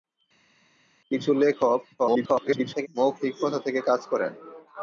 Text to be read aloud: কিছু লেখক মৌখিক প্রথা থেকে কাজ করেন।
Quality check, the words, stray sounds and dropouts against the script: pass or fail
fail